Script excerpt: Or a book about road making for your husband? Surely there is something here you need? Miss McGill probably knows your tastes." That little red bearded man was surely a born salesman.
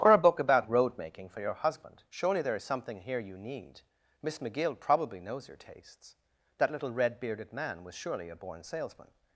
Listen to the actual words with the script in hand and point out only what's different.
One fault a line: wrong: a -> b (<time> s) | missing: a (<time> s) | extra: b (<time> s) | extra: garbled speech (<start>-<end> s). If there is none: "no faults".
no faults